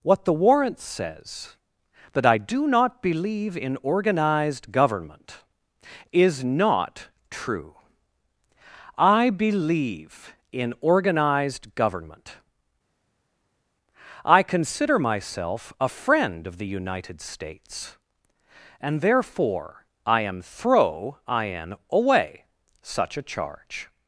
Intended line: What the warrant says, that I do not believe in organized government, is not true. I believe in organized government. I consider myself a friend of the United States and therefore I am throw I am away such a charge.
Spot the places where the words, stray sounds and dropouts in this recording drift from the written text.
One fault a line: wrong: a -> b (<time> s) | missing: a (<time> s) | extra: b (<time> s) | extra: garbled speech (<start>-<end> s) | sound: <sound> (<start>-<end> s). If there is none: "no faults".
no faults